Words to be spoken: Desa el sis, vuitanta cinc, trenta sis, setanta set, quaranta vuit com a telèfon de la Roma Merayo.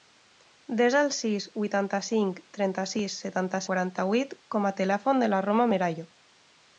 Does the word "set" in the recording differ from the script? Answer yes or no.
yes